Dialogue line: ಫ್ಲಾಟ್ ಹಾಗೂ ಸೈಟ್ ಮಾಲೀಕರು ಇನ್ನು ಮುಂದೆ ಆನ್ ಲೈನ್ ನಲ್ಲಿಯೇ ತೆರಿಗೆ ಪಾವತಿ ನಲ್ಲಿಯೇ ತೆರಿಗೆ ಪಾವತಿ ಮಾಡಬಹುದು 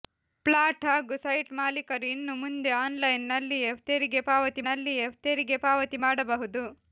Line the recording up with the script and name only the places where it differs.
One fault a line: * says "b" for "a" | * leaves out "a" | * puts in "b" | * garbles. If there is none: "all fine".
all fine